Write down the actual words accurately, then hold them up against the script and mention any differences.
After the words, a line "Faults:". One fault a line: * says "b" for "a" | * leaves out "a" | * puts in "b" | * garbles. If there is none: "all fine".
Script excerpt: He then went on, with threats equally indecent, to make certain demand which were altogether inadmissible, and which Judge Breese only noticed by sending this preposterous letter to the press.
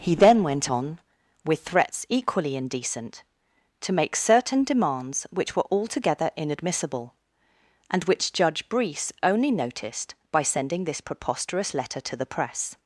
He then went on, with threats equally indecent, to make certain demands which were altogether inadmissible, and which Judge Breese only noticed by sending this preposterous letter to the press.
Faults:
* says "demands" for "demand"